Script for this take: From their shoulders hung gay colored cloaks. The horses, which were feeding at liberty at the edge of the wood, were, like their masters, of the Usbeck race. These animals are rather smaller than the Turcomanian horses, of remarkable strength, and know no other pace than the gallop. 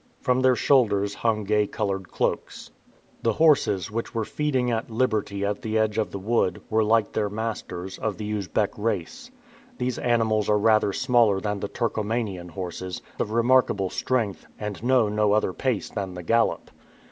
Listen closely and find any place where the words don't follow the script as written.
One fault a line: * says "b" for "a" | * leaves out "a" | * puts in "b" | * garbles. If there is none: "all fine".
all fine